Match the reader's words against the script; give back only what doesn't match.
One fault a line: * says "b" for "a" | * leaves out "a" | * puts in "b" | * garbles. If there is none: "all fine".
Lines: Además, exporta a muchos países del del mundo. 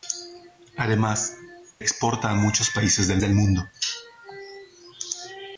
all fine